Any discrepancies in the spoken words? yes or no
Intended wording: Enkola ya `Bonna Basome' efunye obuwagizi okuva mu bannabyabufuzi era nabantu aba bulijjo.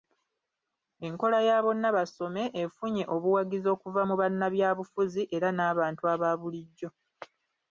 no